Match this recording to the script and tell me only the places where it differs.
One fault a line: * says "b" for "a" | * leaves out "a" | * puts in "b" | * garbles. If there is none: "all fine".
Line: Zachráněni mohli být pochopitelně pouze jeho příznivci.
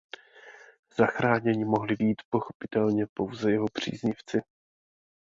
all fine